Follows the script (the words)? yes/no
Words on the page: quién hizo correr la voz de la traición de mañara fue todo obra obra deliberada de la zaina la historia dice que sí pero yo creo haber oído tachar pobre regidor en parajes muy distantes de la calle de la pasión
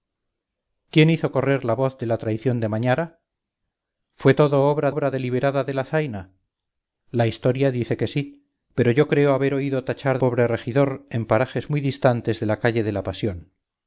yes